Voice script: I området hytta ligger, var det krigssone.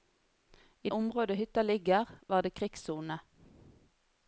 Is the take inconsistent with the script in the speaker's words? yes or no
no